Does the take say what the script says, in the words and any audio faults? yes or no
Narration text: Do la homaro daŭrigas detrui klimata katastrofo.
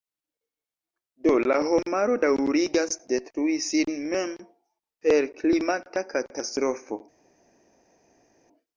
no